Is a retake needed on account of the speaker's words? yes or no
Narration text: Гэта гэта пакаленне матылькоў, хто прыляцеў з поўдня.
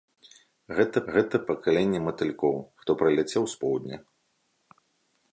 no